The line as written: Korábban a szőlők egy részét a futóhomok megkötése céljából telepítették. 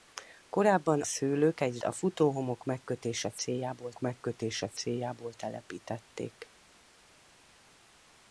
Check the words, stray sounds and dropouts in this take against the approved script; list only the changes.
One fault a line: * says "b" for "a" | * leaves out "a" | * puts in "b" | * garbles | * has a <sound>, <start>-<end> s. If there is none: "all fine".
* leaves out "a"
* leaves out "részét"
* puts in "megkötése céljából"